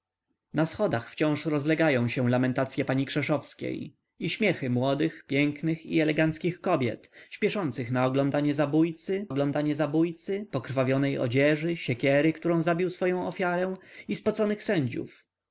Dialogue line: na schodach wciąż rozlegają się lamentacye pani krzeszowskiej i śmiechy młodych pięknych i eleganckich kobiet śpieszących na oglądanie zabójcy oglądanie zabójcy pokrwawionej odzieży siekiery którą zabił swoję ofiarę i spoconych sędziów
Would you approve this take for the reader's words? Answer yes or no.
yes